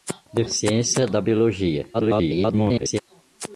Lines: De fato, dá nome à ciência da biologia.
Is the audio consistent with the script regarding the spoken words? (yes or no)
no